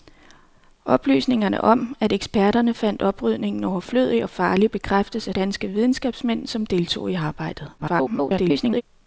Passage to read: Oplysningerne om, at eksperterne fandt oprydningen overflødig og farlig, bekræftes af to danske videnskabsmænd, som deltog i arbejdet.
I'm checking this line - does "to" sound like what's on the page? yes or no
no